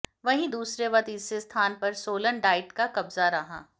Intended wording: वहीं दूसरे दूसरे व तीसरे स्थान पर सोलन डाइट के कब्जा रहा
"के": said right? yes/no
no